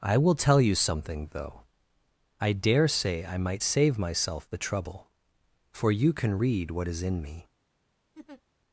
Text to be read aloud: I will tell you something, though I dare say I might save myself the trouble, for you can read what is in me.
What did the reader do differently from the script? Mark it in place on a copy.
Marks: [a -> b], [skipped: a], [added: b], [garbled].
I will tell you something, though I dare say I might save myself the trouble, for you can read what is in me.